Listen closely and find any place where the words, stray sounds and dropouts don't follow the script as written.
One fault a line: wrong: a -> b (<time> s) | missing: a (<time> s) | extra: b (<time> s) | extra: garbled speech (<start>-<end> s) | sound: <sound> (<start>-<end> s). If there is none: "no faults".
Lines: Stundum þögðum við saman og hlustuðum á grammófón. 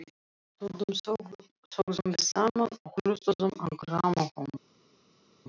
no faults